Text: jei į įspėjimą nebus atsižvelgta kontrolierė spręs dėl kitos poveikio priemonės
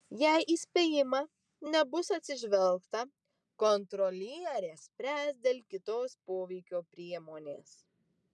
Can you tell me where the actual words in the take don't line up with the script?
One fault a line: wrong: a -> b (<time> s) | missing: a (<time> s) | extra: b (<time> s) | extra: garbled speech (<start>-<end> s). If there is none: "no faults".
no faults